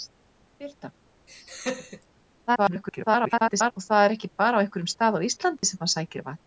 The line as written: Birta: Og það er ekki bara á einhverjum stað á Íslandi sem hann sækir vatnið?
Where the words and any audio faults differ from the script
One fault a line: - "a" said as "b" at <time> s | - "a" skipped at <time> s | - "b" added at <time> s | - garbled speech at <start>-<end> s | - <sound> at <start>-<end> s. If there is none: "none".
- laugh at 1.3-2.1 s
- garbled speech at 2.5-3.7 s
- dropout at 5.6-5.6 s